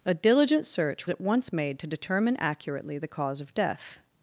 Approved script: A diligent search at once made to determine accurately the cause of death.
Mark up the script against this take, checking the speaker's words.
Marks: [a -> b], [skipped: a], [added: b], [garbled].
A diligent search at once made to determine accurately the cause of death.